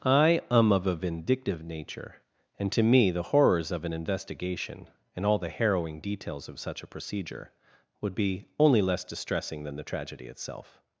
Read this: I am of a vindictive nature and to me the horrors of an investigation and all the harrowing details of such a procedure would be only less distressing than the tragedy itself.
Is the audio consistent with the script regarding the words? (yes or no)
yes